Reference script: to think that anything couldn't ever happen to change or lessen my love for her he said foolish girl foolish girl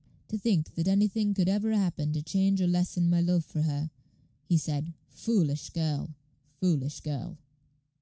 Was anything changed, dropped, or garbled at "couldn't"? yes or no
yes